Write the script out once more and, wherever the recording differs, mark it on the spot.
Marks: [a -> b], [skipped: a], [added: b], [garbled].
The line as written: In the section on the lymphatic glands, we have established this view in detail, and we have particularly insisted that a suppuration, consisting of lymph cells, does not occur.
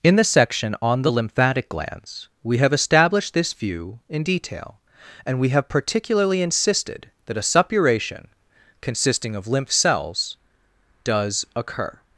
In the section on the lymphatic glands, we have established this view in detail, and we have particularly insisted that a suppuration, consisting of lymph cells, does [skipped: not] occur.